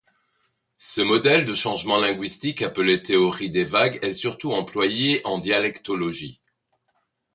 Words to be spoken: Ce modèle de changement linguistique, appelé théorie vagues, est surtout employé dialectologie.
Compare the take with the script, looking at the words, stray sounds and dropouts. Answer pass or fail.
fail